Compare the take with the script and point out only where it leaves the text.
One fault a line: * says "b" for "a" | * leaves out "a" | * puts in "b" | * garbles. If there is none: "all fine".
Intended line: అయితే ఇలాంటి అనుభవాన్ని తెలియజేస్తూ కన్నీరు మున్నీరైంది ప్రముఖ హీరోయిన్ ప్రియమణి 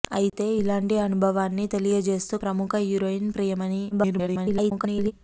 * leaves out "కన్నీరు మున్నీరైంది"
* garbles